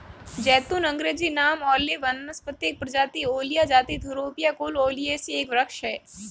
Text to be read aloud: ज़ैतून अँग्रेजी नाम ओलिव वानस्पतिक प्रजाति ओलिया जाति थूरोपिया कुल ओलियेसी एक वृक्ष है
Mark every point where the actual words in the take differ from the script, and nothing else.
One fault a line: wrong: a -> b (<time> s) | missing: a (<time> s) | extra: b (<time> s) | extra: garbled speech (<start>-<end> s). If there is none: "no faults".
no faults